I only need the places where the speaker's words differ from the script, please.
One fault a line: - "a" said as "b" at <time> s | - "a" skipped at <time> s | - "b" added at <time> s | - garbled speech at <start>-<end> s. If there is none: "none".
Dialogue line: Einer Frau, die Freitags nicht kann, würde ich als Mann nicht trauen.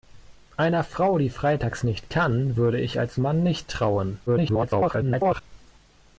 - garbled speech at 4.3-5.4 s